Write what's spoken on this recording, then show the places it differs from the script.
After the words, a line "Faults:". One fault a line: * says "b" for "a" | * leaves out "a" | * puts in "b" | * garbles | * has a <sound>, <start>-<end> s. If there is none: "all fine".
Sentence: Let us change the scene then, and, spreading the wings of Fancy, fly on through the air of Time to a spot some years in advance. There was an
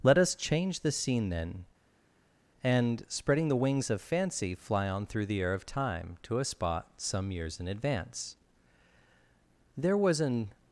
Let us change the scene then, and, spreading the wings of Fancy, fly on through the air of Time to a spot some years in advance. There was an
Faults:
all fine